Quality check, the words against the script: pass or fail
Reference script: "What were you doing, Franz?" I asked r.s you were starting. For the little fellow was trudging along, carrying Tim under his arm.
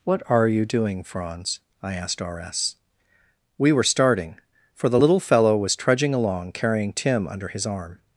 fail